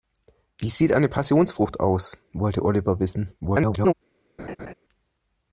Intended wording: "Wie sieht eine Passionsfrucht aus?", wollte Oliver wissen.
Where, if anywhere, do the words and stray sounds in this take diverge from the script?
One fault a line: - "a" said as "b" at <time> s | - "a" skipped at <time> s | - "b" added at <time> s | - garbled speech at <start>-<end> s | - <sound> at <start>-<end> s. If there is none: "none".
- garbled speech at 3.4-3.9 s
- laugh at 4.4-4.7 s